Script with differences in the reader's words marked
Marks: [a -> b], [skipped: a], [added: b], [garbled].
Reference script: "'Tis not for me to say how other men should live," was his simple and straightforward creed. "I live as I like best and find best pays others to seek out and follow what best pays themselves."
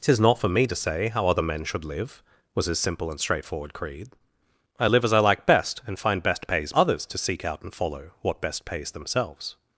"'Tis not for me to say how other men should live," was his simple and straightforward creed. "I live as I like best and find best pays others to seek out and follow what best pays themselves."